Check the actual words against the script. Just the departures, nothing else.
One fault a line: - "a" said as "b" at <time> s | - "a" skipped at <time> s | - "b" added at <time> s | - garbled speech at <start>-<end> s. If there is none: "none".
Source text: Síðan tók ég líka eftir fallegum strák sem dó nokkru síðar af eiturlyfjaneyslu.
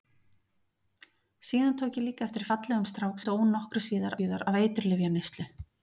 - "sem" skipped at 3.2 s
- "síðar" added at 4.2 s